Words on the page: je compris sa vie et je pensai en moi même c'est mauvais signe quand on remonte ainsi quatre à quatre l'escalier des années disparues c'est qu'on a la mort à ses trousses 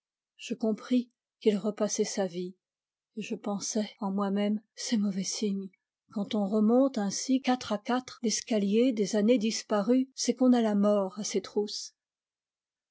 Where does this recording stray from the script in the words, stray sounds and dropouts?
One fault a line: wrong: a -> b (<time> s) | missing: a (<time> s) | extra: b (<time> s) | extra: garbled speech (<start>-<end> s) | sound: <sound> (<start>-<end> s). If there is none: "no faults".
extra: qu'il repassait (1.4 s)